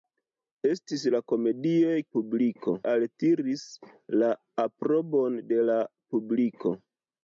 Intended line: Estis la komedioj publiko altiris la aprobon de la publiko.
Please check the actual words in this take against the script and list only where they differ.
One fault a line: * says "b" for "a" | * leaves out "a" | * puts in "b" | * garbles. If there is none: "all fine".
all fine